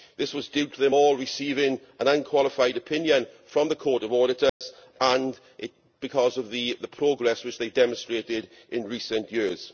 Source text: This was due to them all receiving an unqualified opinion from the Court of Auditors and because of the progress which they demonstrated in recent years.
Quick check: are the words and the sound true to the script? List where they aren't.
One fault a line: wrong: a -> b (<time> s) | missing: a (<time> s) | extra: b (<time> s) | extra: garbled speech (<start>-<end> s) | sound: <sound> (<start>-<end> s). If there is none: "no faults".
sound: dropout (4.5-4.6 s)